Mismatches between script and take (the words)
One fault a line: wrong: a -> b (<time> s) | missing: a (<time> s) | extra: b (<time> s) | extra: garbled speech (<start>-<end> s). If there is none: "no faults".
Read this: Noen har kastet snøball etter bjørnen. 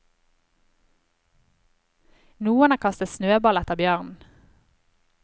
no faults